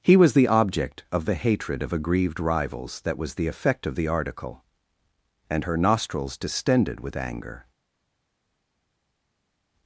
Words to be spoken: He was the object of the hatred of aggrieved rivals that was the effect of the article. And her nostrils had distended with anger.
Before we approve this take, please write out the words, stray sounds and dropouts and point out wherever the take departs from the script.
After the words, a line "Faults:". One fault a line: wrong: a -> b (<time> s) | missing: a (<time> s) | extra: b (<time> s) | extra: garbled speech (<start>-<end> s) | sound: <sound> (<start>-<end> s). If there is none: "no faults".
He was the object of the hatred of aggrieved rivals that was the effect of the article. And her nostrils distended with anger.
Faults:
missing: had (6.4 s)